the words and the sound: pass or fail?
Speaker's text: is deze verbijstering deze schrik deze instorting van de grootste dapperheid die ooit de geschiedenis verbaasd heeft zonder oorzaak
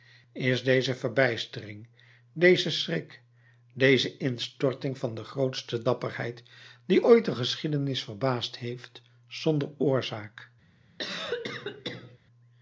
fail